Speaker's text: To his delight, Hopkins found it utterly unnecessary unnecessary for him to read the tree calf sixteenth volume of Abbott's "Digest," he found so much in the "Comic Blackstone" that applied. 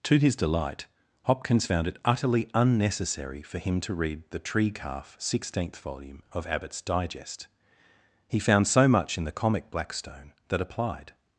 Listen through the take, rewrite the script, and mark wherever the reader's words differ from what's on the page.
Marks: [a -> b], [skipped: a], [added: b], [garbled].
To his delight, Hopkins found it utterly unnecessary [skipped: unnecessary] for him to read the tree calf sixteenth volume of Abbott's "Digest," he found so much in the "Comic Blackstone" that applied.